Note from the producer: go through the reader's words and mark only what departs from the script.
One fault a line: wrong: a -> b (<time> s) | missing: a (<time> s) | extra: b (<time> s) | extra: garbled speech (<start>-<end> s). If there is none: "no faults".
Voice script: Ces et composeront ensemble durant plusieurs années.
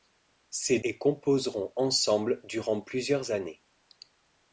no faults